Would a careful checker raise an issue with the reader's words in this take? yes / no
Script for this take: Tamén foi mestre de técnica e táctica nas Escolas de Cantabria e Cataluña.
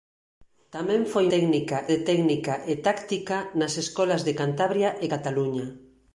yes